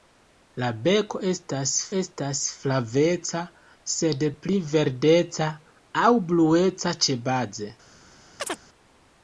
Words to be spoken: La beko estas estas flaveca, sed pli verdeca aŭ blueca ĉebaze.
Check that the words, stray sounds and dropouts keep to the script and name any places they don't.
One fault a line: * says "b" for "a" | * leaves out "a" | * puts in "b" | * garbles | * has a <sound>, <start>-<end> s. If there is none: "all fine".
* has a chirp, 8.4-8.6 s